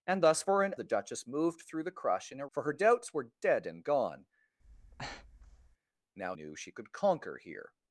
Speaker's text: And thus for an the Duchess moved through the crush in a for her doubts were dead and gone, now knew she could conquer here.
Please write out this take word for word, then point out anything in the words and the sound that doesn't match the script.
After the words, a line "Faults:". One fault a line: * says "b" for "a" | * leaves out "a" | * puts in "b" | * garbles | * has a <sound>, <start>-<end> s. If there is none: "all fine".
And thus for an the Duchess moved through the crush in a for her doubts were dead and gone, now knew she could conquer here.
Faults:
* has a breath, 4.6-5.8 s